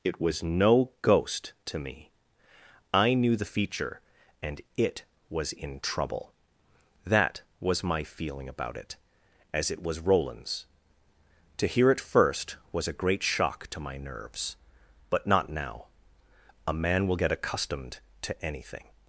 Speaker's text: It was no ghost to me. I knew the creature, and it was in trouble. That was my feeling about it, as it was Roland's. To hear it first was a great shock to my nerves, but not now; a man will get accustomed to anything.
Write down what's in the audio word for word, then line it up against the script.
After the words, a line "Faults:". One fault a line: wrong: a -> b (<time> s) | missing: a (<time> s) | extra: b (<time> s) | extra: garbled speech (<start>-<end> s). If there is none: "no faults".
It was no ghost to me. I knew the feature, and it was in trouble. That was my feeling about it, as it was Roland's. To hear it first was a great shock to my nerves, but not now; a man will get accustomed to anything.
Faults:
wrong: creature -> feature (3.5 s)